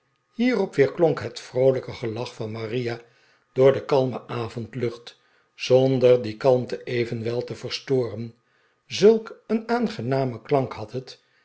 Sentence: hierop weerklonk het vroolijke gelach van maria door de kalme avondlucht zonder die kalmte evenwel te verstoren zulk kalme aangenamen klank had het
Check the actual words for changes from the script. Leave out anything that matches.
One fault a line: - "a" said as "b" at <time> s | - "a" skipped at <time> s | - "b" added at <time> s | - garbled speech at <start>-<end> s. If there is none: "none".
- "kalme" said as "een" at 9.5 s